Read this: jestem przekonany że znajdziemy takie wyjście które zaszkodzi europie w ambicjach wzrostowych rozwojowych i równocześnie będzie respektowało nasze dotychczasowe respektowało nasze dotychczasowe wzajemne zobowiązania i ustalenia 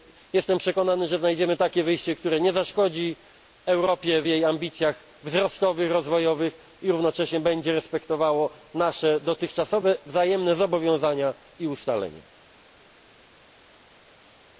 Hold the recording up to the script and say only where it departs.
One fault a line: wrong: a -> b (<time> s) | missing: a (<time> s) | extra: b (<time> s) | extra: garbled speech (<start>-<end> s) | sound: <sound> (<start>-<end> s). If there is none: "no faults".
extra: nie (2.4 s)
extra: jej (4.3 s)
missing: respektowało nasze dotychczasowe (10.0 s)